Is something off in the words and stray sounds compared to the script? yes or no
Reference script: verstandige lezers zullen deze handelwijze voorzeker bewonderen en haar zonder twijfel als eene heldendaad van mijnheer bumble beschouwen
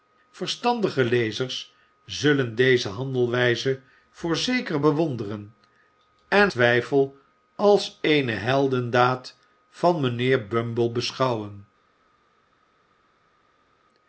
yes